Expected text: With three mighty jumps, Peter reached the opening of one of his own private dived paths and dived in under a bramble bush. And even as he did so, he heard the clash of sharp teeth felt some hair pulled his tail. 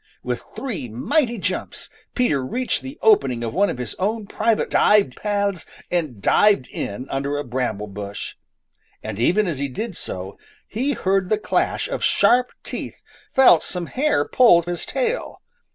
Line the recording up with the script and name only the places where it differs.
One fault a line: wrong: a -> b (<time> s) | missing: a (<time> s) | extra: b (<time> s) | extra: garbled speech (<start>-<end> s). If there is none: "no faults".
no faults